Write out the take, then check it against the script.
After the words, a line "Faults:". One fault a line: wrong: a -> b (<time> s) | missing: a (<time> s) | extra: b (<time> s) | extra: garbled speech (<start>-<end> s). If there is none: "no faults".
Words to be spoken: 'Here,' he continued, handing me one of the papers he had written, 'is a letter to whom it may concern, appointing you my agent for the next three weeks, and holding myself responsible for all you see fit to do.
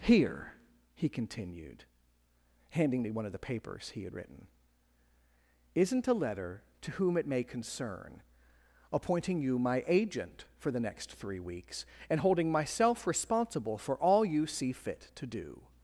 'Here,' he continued, handing me one of the papers he had written, 'isn't a letter to whom it may concern, appointing you my agent for the next three weeks, and holding myself responsible for all you see fit to do.
Faults:
wrong: is -> isn't (5.7 s)